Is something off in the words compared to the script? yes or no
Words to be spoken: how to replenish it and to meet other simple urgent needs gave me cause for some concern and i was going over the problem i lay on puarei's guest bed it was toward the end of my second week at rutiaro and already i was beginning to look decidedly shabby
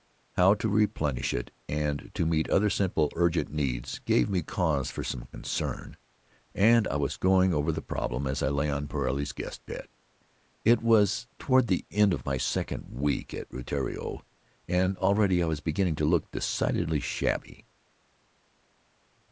yes